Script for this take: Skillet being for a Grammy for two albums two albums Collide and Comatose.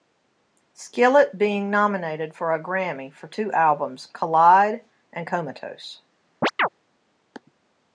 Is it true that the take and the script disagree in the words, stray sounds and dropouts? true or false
true